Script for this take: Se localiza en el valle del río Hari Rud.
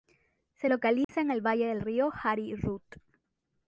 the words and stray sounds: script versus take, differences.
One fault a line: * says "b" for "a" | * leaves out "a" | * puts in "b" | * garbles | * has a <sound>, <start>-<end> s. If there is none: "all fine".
* has a dropout, 1.0-1.1 s